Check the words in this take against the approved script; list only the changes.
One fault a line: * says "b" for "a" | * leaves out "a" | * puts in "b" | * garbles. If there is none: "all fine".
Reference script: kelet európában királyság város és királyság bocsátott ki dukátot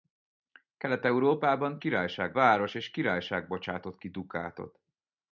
all fine